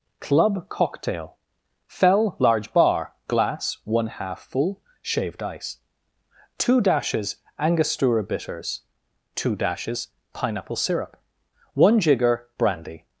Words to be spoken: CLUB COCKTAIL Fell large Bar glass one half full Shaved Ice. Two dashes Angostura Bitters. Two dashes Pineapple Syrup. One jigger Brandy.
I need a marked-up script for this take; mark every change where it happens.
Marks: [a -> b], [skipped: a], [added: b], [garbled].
CLUB COCKTAIL Fell large Bar glass one half full Shaved Ice. Two dashes Angostura Bitters. Two dashes Pineapple Syrup. One jigger Brandy.